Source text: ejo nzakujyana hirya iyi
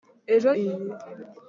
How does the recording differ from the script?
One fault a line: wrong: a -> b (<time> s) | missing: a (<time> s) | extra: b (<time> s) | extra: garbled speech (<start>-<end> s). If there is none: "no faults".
missing: nzakujyana hirya (0.5 s)